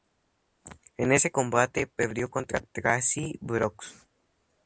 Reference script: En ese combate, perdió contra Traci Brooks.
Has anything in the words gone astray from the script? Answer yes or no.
no